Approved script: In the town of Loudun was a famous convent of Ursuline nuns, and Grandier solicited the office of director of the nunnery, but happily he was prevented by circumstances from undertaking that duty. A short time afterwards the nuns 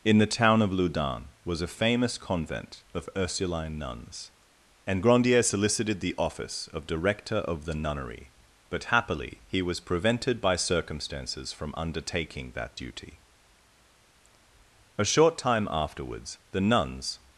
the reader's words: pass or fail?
pass